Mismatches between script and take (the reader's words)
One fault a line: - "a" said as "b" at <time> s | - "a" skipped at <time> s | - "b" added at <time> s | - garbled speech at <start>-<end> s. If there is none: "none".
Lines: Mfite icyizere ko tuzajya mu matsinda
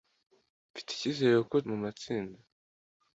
- "tuzajya" skipped at 1.6 s